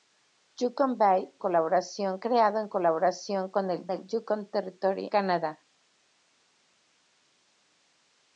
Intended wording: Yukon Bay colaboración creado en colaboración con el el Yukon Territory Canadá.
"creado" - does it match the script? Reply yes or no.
yes